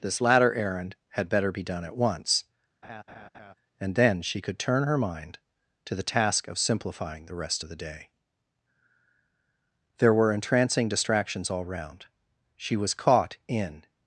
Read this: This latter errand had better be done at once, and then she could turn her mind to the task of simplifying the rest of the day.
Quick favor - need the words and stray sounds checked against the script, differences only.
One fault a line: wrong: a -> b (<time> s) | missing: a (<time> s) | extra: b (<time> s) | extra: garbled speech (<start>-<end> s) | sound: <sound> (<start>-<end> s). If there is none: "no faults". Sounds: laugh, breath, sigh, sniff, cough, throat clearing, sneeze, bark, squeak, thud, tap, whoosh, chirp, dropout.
sound: laugh (2.8-3.5 s)
extra: There were entrancing distractions all round She was caught in (10.0 s)